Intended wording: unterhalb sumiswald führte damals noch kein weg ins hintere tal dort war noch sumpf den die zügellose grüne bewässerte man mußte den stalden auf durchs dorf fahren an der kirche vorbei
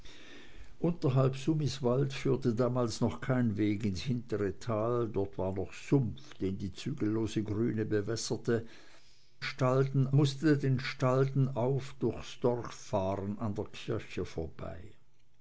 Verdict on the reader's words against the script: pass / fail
fail